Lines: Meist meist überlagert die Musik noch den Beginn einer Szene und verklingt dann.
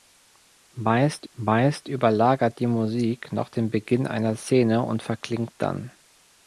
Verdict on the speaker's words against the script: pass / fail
pass